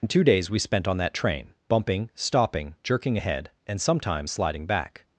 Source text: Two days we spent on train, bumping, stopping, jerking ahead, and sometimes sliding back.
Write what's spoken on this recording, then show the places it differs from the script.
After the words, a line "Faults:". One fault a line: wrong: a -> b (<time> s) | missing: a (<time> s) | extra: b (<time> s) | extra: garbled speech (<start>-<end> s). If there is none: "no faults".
Two days we spent on that train, bumping, stopping, jerking ahead, and sometimes sliding back.
Faults:
extra: that (1.0 s)